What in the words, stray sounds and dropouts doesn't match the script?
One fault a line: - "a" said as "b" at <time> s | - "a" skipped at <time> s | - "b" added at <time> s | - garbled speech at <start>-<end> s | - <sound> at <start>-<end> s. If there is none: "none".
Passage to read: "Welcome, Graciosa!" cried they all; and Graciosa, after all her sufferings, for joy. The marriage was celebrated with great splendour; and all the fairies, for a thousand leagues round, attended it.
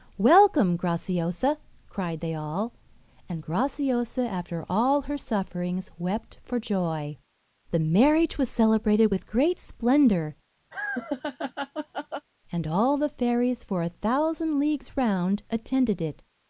- "wept" added at 6.0 s
- laugh at 10.7-12.3 s